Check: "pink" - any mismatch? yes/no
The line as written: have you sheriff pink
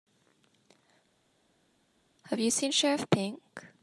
no